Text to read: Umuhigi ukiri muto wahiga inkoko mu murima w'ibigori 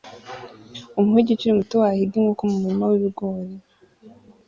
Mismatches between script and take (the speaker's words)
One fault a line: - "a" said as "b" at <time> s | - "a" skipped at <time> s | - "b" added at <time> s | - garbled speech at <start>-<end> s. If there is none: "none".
none